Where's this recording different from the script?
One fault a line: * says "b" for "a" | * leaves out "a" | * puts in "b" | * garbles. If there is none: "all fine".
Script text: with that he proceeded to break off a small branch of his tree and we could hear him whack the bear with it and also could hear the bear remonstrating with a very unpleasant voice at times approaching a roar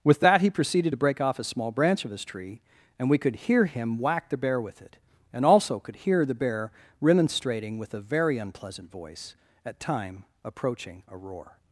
* says "time" for "times"